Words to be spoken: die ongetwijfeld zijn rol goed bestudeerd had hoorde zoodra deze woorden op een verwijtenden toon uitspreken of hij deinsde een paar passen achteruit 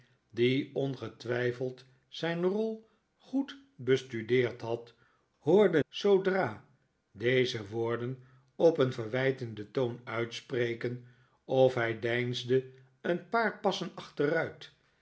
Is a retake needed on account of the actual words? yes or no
no